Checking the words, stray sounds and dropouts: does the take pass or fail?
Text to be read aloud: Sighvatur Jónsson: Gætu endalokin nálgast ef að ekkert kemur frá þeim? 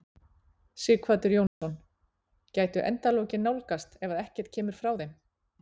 fail